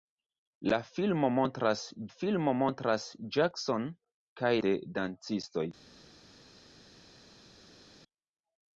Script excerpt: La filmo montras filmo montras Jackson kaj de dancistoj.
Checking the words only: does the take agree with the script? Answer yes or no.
yes